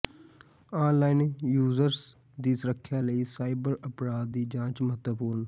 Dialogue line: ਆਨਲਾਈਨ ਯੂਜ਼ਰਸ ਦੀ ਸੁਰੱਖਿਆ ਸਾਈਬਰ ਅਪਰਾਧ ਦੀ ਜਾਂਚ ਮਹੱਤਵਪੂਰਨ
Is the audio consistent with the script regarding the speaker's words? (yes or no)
no